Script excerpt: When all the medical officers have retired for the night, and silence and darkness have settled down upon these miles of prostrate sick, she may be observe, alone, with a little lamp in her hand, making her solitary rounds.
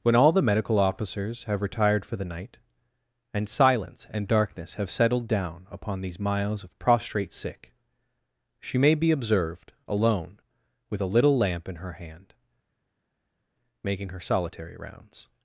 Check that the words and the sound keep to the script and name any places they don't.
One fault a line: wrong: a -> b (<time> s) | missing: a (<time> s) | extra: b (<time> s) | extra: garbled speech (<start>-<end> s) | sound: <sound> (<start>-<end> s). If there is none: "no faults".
wrong: observe -> observed (9.1 s)